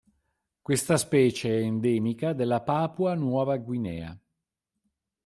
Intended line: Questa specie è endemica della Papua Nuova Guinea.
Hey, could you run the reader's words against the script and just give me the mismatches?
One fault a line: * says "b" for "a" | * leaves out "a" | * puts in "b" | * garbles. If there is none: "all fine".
all fine